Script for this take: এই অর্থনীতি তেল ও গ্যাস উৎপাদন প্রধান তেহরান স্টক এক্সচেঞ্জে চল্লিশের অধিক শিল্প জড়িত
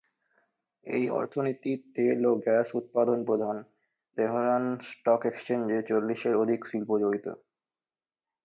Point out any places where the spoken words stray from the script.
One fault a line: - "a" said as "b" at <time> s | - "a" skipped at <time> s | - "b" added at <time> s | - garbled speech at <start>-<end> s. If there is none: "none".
none